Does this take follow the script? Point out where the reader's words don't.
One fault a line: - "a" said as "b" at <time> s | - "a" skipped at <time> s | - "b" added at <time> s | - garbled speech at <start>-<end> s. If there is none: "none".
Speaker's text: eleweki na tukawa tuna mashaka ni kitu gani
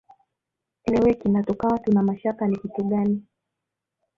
none